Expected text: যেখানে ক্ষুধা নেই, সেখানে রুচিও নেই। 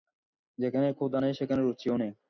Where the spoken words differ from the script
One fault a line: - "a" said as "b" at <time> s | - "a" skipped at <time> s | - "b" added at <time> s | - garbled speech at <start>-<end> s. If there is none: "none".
none